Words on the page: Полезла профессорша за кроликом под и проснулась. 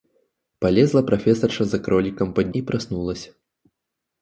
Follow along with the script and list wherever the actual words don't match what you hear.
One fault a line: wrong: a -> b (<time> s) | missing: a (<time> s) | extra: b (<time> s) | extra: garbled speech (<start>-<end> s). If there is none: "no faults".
no faults